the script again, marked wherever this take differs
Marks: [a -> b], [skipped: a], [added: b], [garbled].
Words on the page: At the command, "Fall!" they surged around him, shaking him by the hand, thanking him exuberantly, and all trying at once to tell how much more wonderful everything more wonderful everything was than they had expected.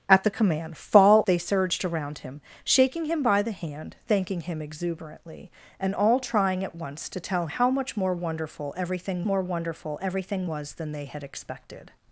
At the command, "Fall!" they surged around him, shaking him by the hand, thanking him exuberantly, and all trying at once to tell how much more wonderful everything more wonderful everything was than they had expected.